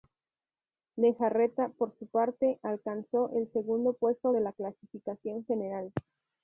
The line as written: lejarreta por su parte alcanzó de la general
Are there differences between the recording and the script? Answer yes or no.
yes